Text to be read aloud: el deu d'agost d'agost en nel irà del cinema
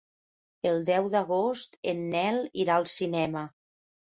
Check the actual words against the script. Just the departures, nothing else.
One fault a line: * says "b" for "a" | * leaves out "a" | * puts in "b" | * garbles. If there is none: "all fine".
* leaves out "d'agost"
* says "al" for "del"